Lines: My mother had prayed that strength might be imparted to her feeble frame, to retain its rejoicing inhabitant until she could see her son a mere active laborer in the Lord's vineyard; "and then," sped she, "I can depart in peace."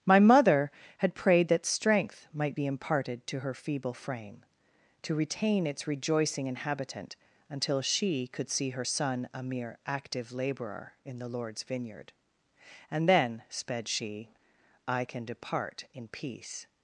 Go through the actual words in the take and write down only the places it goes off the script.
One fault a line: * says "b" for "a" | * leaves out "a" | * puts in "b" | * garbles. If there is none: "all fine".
all fine